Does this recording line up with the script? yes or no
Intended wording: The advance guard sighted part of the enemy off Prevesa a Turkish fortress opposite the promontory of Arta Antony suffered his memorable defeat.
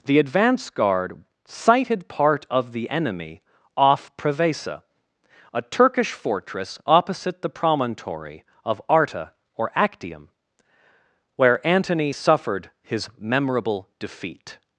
no